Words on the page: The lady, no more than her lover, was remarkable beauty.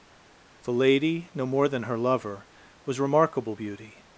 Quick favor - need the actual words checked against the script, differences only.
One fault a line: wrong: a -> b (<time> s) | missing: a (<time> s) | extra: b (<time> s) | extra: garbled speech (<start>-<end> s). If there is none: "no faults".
no faults